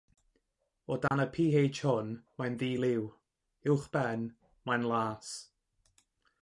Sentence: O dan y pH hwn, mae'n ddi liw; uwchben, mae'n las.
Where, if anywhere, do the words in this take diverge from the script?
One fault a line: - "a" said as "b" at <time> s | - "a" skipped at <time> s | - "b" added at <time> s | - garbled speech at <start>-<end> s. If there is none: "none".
none